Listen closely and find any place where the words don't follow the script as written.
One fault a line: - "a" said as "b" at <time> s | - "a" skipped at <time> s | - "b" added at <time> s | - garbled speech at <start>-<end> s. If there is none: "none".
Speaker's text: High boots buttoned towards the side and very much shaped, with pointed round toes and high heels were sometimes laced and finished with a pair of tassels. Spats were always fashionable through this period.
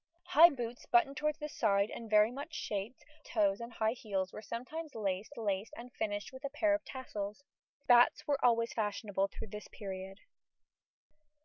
- "with pointed round" skipped at 3.0 s
- "laced" added at 5.4 s